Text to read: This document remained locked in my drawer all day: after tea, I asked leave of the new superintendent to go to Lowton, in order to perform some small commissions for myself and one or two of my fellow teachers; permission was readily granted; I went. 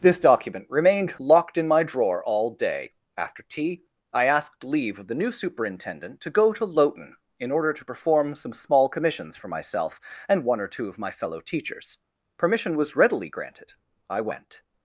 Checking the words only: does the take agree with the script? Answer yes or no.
yes